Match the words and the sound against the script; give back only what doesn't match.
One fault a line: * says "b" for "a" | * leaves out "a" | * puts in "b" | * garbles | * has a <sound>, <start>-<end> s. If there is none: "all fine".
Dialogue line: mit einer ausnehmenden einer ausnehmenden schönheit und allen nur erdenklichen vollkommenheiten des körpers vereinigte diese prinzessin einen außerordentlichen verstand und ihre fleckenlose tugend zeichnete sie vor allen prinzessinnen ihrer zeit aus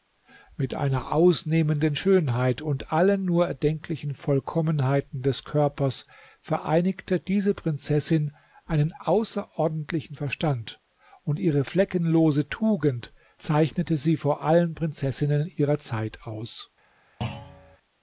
* leaves out "einer ausnehmenden"
* has a thud, 17.2-17.8 s